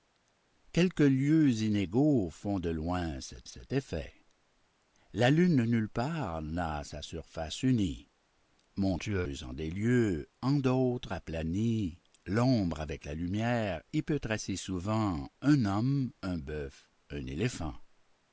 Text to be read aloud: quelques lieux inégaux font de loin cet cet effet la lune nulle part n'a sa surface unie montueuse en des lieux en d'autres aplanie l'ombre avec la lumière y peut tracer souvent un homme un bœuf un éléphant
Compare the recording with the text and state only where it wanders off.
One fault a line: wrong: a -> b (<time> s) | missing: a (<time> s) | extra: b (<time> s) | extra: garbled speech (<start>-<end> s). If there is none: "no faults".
no faults